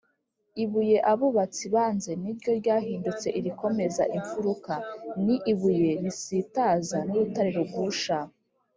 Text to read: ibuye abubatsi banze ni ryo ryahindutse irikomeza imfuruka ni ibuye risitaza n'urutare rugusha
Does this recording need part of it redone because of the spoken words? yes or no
no